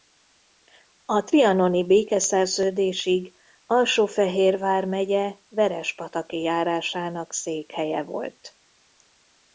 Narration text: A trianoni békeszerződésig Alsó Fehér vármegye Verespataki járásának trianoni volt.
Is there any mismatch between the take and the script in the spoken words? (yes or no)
yes